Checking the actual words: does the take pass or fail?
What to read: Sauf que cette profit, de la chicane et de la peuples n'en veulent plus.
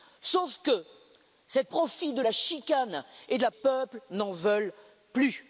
pass